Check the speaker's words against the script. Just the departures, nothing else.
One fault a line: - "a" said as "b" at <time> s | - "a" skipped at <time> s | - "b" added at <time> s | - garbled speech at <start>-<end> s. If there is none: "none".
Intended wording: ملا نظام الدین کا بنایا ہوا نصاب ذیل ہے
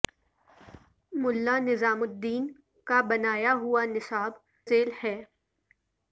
none